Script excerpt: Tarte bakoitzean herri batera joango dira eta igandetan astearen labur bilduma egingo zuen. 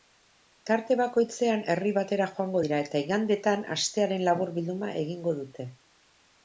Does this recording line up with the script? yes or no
no